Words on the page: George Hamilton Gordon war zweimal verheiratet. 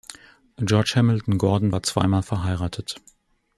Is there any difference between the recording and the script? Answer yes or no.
no